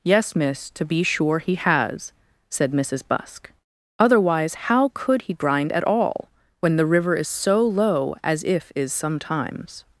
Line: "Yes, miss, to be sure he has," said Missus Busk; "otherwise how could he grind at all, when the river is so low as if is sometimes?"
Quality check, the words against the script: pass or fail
pass